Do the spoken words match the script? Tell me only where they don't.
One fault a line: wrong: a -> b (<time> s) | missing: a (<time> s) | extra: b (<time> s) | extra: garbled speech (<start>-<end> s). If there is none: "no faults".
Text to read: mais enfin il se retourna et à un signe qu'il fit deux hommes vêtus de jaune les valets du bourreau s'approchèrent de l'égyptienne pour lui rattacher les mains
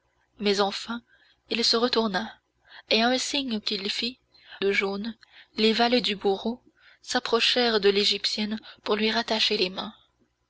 missing: deux hommes vêtus (4.2 s)